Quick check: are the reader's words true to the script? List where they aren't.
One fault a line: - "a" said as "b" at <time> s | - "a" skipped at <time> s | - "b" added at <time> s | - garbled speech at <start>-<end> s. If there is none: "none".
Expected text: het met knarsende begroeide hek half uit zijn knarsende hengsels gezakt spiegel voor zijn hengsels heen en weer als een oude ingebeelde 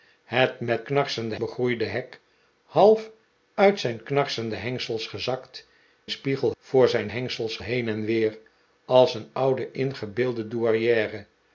none